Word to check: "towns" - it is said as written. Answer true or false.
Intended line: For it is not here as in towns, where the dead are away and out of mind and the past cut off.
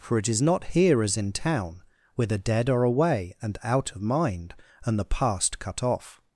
false